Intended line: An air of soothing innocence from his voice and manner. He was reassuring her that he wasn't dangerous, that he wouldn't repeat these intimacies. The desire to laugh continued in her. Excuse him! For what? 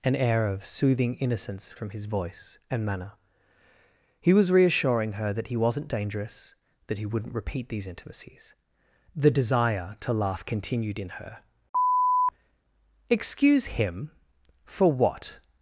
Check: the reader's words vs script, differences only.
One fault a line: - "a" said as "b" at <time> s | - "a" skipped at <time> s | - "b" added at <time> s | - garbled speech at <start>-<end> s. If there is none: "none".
none